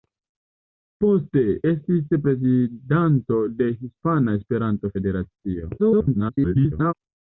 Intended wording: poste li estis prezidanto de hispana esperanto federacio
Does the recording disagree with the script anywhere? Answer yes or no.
yes